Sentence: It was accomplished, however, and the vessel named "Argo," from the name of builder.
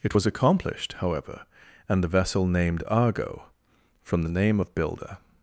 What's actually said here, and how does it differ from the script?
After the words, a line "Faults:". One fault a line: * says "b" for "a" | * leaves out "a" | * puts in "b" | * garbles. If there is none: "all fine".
It was accomplished, however, and the vessel named "Argo," from the name of builder.
Faults:
all fine